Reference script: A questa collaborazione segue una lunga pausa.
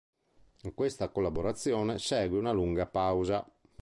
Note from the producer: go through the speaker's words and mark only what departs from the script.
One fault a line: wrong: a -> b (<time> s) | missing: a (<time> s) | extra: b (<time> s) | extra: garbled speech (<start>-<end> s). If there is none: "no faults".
no faults